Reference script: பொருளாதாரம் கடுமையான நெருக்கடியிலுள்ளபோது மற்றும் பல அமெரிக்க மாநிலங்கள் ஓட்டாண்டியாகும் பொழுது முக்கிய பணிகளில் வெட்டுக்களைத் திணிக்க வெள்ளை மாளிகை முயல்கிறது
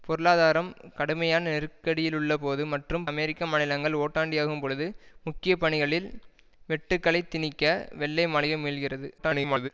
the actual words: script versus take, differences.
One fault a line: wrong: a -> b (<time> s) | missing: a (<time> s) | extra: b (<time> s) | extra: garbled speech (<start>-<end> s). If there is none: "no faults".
missing: பல (3.0 s)
extra: garbled speech (9.2-9.7 s)